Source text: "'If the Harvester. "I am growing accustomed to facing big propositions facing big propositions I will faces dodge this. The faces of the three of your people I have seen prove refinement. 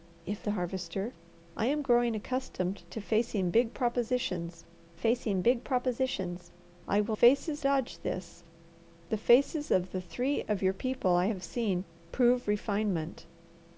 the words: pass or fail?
pass